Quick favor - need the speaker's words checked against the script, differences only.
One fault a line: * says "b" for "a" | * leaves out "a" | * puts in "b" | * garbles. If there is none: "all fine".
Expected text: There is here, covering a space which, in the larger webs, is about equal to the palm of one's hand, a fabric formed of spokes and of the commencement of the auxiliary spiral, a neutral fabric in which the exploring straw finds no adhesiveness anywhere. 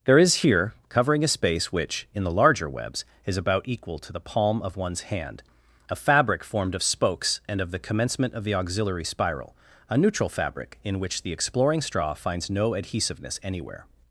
all fine